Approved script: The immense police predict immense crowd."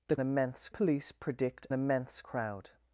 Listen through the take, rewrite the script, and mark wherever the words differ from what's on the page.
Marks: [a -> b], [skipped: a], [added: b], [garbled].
The immense police predict immense crowd."